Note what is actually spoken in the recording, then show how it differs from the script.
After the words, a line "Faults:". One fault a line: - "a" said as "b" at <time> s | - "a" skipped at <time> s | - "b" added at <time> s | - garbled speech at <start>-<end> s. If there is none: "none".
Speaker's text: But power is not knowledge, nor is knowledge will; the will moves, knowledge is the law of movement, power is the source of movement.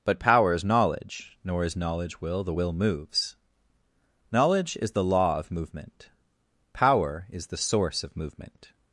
But power is knowledge, nor is knowledge will; the will moves, knowledge is the law of movement, power is the source of movement.
Faults:
- "not" skipped at 0.6 s